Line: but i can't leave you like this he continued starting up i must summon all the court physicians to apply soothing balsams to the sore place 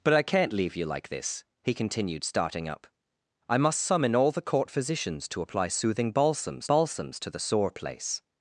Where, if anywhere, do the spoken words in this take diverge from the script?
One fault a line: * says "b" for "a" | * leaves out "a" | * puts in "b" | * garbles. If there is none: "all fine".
* puts in "balsams"